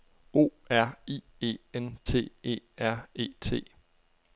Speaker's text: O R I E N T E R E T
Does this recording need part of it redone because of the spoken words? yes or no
no